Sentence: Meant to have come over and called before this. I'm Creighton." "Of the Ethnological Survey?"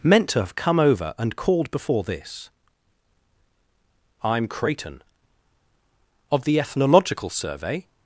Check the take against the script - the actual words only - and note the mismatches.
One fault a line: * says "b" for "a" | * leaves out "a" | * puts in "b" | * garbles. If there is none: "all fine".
all fine